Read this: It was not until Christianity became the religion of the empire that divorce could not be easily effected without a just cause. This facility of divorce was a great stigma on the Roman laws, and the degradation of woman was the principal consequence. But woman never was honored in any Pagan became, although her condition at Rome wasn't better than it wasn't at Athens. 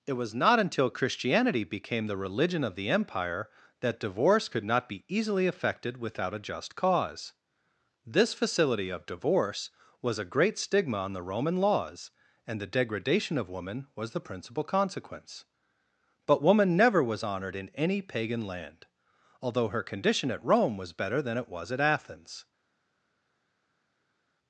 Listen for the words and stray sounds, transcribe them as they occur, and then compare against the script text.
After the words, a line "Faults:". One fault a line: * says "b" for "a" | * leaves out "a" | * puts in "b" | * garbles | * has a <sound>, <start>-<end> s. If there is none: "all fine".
It was not until Christianity became the religion of the empire that divorce could not be easily effected without a just cause. This facility of divorce was a great stigma on the Roman laws, and the degradation of woman was the principal consequence. But woman never was honored in any Pagan land, although her condition at Rome was better than it was at Athens.
Faults:
* says "land" for "became"
* says "was" for "wasn't"
* says "was" for "wasn't"